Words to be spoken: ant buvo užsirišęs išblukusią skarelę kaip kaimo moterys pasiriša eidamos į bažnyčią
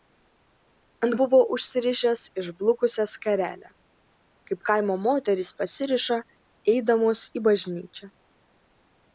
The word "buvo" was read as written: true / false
true